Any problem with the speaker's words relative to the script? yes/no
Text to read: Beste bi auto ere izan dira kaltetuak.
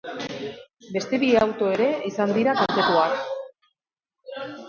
no